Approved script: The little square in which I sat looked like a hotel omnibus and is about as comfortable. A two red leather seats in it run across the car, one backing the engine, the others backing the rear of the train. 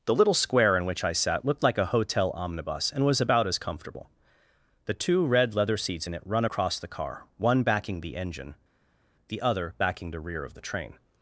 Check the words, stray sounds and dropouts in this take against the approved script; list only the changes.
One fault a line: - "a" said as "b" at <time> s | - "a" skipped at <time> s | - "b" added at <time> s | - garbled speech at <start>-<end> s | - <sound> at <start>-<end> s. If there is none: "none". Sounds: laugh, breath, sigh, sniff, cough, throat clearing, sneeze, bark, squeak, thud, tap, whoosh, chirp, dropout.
- "is" said as "was" at 3.0 s
- "A" said as "The" at 4.8 s
- "others" said as "other" at 9.4 s